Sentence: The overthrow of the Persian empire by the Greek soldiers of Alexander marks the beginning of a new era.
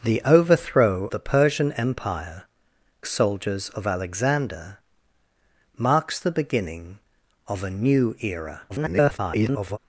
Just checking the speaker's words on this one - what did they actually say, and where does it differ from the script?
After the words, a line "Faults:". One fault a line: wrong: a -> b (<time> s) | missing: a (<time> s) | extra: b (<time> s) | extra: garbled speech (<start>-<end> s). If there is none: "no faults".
The overthrow the Persian empire soldiers of Alexander marks the beginning of a new era. [garbled]
Faults:
missing: of (1.1 s)
missing: by the Greek (2.5 s)
extra: garbled speech (8.7-9.8 s)